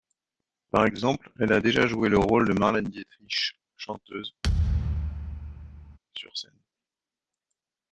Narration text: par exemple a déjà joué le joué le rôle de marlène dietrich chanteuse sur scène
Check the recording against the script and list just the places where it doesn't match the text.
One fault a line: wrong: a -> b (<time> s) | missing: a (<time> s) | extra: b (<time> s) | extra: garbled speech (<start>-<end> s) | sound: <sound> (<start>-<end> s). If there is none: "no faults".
extra: elle (1.4 s)
missing: joué le (2.2 s)
sound: thud (4.4-6.0 s)